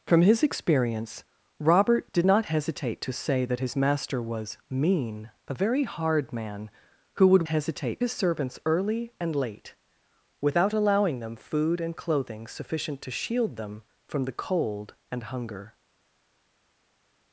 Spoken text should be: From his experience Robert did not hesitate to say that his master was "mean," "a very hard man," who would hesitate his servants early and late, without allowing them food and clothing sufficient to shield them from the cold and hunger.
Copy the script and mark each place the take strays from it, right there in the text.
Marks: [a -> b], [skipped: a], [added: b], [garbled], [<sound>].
From his experience Robert did not hesitate to say that his master was "mean," "a very hard man," who would hesitate his servants early and late, without allowing them food and clothing sufficient to shield them from the cold and hunger.